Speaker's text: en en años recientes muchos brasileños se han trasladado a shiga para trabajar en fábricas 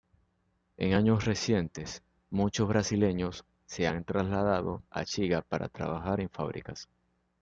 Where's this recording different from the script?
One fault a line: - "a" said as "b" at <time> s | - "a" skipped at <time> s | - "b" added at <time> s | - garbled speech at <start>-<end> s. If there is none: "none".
- "en" skipped at 0.9 s